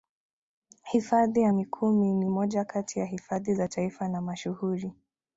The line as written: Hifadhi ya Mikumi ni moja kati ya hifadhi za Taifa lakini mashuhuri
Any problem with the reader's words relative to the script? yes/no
yes